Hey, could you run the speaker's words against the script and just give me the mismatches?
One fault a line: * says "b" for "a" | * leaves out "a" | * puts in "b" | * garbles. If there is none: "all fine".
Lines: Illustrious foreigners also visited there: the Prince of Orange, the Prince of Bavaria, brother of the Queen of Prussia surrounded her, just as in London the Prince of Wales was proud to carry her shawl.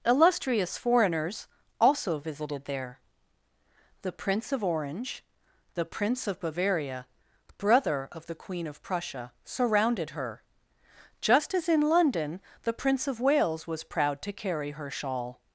all fine